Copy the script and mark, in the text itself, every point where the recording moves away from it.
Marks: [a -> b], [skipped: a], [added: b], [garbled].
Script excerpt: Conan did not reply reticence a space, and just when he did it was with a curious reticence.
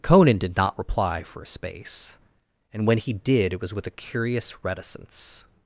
Conan did not reply [reticence -> for] a space, and [skipped: just] when he did it was with a curious reticence.